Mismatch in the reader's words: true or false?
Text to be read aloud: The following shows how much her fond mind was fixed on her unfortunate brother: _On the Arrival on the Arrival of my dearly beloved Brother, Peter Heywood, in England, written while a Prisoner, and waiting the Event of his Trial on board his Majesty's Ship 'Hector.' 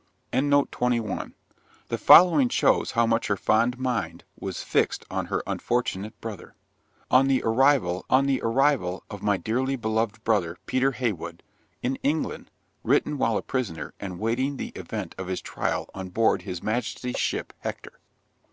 false